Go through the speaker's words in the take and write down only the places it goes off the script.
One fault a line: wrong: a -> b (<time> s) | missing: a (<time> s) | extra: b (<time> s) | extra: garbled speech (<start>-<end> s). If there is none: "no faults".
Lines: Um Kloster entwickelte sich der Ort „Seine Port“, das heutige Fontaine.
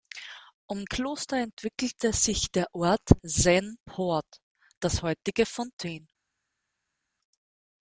no faults